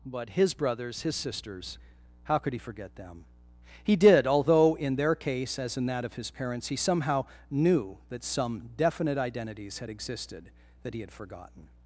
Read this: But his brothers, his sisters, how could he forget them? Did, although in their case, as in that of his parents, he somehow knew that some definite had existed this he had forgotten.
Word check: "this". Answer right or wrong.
wrong